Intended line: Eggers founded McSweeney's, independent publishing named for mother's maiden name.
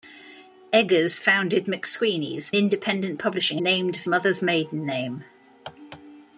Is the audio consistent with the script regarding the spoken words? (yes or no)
yes